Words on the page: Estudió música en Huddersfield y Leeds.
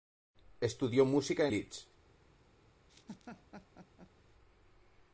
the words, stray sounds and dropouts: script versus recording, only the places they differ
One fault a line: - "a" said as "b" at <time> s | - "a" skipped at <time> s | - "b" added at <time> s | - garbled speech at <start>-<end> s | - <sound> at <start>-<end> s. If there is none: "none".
- "en Huddersfield y" skipped at 1.5 s
- laugh at 2.9-4.1 s